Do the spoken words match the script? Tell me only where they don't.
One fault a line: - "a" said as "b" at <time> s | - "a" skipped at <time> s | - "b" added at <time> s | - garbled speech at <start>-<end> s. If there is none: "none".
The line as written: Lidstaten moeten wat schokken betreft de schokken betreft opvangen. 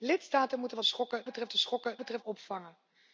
none